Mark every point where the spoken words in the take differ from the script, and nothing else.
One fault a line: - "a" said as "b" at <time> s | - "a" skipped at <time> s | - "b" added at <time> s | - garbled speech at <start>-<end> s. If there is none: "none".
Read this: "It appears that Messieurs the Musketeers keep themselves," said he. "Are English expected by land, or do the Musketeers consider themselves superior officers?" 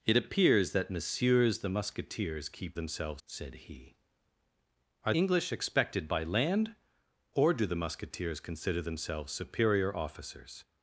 none